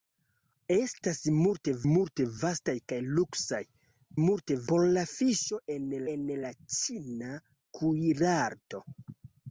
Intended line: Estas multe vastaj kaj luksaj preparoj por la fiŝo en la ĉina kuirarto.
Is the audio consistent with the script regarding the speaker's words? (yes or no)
no